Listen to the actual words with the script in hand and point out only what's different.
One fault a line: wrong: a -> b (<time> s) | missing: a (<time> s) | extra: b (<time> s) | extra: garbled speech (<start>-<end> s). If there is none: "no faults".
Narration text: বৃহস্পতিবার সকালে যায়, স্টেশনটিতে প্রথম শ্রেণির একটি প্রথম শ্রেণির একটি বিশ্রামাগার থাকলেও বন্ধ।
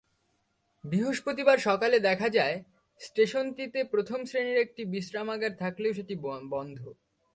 extra: দেখা (2.0 s)
missing: প্রথম শ্রেণির একটি (4.8 s)
extra: সেটি (5.9 s)